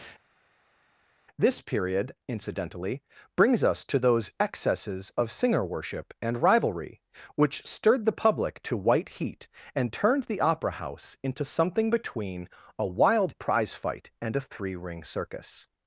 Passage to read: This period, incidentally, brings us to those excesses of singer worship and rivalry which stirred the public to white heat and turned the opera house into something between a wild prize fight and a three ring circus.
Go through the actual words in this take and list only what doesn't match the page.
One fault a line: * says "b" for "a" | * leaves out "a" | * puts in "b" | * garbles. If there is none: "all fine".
all fine